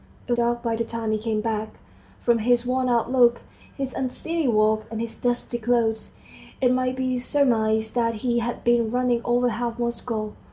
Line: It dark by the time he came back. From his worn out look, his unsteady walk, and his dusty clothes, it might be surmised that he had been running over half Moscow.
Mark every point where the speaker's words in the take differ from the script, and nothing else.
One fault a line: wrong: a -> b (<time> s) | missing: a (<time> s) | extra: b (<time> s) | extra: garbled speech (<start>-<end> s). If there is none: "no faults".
no faults